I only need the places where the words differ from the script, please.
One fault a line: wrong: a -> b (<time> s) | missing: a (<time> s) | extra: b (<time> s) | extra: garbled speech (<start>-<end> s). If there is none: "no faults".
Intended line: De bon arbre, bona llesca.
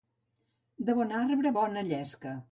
no faults